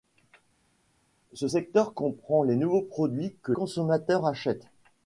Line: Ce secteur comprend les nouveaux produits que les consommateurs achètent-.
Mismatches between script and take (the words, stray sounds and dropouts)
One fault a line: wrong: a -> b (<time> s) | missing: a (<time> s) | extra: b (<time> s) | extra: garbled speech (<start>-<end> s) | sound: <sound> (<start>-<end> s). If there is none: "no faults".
missing: les (3.5 s)